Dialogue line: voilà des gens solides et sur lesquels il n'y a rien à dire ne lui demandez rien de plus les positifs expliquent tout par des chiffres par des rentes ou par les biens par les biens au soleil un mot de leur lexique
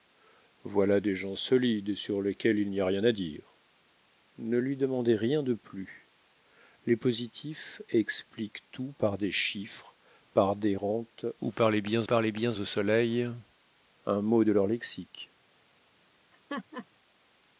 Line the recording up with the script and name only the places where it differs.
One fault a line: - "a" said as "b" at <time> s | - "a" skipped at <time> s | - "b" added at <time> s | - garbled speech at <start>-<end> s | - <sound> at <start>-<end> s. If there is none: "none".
- laugh at 16.3-16.9 s